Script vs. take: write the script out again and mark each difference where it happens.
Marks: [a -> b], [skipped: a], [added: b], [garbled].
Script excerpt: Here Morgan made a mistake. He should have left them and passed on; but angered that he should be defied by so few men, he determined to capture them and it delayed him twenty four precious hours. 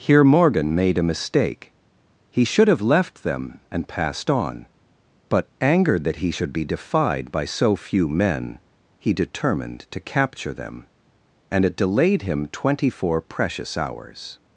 Here Morgan made a mistake. He should have left them and passed on; but angered that he should be defied by so few men, he determined to capture them and it delayed him twenty four precious hours.